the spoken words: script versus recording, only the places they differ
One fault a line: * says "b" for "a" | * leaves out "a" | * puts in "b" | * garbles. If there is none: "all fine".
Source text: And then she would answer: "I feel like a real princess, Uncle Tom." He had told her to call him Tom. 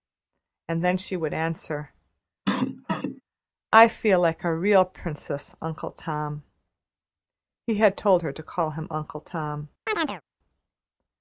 * puts in "Uncle"